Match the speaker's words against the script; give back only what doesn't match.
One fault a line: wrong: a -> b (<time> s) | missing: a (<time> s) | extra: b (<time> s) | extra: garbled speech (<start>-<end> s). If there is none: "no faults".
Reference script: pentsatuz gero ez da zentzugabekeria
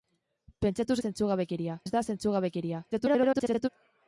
wrong: gero -> zentzugabekeria (1.0 s)
extra: garbled speech (2.9-3.7 s)